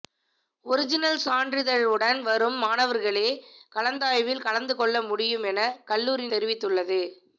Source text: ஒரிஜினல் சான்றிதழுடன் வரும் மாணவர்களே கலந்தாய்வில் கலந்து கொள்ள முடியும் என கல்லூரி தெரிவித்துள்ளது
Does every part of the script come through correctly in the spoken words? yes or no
yes